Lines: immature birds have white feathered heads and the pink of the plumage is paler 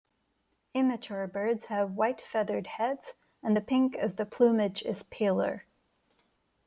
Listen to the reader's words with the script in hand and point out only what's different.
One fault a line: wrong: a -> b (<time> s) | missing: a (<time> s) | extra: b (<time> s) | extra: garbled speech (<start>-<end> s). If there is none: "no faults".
no faults